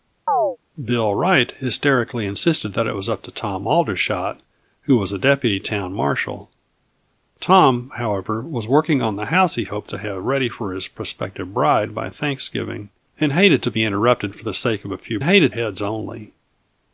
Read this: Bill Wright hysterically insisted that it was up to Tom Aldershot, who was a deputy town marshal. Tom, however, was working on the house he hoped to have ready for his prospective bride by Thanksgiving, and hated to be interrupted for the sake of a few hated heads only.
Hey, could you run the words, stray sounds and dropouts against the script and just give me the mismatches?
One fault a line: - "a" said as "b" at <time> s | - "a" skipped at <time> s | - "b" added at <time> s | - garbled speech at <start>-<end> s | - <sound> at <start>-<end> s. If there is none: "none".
- chirp at 0.3-0.6 s